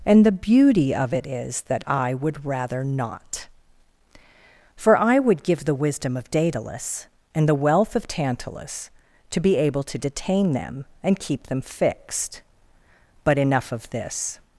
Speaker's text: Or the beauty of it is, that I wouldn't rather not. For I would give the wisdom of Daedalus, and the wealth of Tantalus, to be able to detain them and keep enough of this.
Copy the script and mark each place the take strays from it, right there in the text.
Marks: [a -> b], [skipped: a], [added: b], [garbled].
[Or -> And] the beauty of it is, that I [wouldn't -> would] rather not. For I would give the wisdom of Daedalus, and the wealth of Tantalus, to be able to detain them and keep [added: them fixed But] enough of this.